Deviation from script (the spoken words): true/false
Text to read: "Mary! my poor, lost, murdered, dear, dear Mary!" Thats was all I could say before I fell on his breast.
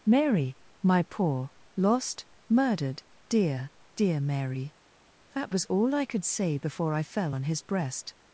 true